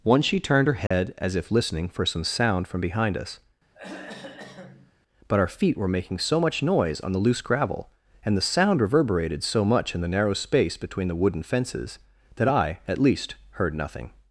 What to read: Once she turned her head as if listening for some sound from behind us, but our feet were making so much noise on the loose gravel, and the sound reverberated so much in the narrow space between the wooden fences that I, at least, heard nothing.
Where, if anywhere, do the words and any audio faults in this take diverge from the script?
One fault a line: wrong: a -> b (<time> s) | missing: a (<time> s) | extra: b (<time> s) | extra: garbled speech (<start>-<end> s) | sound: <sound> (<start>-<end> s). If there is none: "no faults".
sound: dropout (0.9-0.9 s)
sound: throat clearing (3.7-4.9 s)